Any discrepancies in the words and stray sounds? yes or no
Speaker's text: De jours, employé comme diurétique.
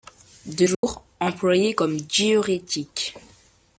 yes